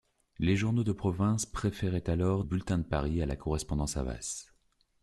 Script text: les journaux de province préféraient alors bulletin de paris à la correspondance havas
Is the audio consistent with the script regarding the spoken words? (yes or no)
yes